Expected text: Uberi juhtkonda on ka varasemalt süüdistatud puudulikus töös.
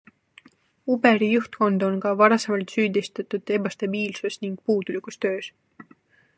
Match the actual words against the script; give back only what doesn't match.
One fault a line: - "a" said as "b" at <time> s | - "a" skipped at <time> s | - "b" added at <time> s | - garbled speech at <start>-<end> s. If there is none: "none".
- "ebastabiilsus ning" added at 3.6 s